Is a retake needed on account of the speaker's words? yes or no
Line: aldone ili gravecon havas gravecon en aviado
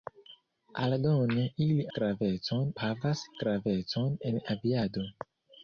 no